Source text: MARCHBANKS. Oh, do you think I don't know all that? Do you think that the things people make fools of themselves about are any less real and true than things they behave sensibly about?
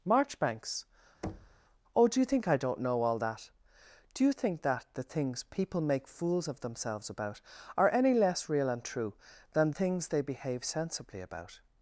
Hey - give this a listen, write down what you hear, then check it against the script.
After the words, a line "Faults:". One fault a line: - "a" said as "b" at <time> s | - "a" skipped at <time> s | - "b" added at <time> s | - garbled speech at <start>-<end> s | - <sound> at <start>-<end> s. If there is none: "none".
MARCHBANKS. Oh, do you think I don't know all that? Do you think that the things people make fools of themselves about are any less real and true than things they behave sensibly about?
Faults:
- thud at 1.2-1.6 s